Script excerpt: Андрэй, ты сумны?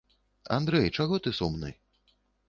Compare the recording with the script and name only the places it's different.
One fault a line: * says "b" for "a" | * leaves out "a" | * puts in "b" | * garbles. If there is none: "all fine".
* puts in "чаго"